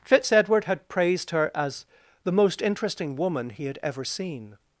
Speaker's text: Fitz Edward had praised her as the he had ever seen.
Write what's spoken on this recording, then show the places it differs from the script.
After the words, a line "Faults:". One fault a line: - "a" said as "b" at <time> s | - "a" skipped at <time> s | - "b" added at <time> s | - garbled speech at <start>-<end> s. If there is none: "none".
Fitz Edward had praised her as the most interesting woman he had ever seen.
Faults:
- "most interesting woman" added at 2.3 s